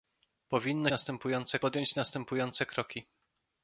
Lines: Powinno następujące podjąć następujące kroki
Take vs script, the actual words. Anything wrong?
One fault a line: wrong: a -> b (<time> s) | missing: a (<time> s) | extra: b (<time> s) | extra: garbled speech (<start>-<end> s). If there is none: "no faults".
no faults